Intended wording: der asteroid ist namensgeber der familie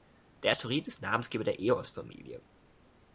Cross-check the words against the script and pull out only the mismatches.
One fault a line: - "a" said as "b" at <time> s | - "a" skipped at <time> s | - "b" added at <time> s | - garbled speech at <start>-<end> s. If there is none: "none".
- "eos" added at 1.6 s